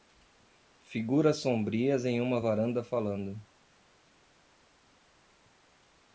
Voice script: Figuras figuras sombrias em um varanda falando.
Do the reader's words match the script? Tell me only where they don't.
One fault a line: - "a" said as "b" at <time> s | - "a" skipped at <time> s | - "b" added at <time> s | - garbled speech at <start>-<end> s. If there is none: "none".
- "figuras" skipped at 1.4 s
- "um" said as "uma" at 2.2 s